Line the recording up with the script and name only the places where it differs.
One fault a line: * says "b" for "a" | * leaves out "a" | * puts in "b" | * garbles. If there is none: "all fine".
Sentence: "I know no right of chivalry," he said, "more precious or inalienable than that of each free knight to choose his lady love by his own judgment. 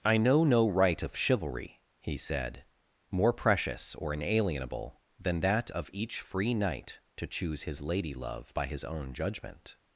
all fine